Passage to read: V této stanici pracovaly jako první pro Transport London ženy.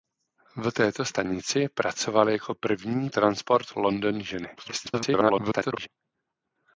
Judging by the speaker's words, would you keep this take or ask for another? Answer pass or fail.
fail